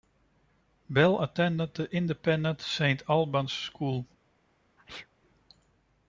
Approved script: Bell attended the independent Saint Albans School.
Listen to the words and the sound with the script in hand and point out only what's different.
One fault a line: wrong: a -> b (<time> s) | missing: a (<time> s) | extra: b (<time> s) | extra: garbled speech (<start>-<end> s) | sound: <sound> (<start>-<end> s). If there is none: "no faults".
sound: sneeze (4.8-5.1 s)